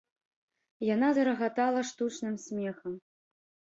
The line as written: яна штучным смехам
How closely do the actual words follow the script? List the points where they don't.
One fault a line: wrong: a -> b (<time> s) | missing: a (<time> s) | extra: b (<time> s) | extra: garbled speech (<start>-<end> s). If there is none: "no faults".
extra: зарагатала (1.2 s)